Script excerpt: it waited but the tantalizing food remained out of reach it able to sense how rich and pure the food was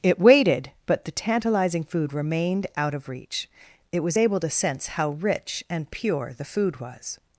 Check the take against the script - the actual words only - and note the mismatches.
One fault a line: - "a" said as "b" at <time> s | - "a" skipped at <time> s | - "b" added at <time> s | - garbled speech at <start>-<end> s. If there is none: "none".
- "was" added at 4.0 s